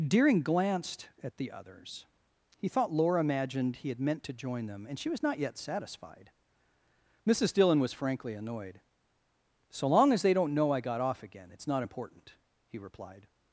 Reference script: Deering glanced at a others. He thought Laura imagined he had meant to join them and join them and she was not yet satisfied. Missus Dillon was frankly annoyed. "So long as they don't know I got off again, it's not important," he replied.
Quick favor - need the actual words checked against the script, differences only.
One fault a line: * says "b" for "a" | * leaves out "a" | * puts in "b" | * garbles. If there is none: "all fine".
* says "the" for "a"
* leaves out "join them and"